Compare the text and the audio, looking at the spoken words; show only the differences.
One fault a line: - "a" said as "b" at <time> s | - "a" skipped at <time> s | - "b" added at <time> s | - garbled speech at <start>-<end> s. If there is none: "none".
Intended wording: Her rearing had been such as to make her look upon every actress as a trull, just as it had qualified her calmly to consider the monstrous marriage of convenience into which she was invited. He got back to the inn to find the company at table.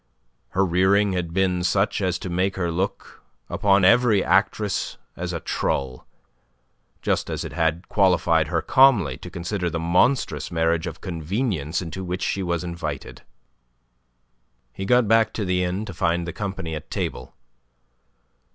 none